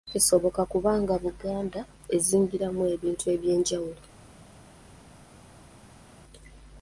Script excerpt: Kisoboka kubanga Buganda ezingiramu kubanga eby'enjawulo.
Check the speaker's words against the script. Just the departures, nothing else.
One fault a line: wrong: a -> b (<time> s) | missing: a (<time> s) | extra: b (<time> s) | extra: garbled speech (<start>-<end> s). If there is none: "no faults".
wrong: kubanga -> ebintu (2.9 s)